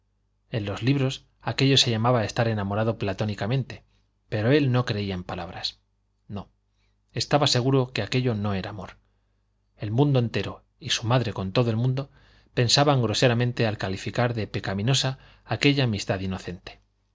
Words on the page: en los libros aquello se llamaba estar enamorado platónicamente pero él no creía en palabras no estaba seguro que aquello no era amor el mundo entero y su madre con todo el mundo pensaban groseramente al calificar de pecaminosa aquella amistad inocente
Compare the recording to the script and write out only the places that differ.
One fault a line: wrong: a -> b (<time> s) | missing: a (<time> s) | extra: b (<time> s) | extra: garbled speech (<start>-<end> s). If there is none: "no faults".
no faults